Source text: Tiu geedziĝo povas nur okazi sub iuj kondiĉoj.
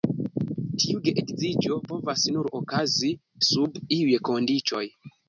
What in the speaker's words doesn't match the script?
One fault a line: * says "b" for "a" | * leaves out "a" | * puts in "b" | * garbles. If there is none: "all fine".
all fine